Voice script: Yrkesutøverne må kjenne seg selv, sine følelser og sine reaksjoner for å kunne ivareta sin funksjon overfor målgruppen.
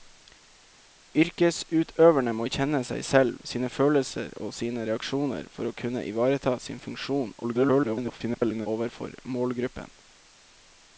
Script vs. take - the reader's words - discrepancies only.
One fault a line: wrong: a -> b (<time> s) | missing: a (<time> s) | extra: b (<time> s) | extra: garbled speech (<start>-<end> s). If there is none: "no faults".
extra: garbled speech (7.4-8.7 s)